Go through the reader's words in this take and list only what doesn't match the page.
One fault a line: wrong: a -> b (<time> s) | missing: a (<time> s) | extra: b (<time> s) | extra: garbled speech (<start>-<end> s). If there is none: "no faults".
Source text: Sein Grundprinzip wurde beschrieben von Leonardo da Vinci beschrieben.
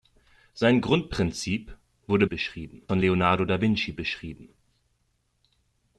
no faults